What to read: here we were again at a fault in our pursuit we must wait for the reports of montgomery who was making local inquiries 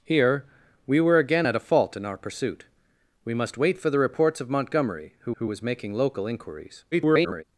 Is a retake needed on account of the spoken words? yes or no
yes